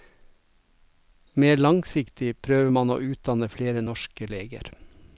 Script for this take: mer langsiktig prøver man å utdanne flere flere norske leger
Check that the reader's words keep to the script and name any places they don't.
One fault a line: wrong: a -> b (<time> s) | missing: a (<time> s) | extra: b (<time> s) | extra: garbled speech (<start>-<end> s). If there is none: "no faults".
missing: flere (3.8 s)